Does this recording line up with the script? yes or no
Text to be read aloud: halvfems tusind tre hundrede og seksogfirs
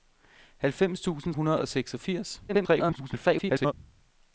no